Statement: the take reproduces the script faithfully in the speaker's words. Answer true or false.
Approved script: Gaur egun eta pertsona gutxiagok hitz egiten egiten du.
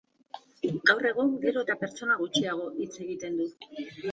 false